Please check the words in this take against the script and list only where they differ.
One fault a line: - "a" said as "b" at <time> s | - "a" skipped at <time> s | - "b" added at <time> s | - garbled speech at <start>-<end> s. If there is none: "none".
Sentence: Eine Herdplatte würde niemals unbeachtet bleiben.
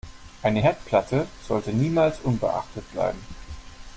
- "würde" said as "sollte" at 1.4 s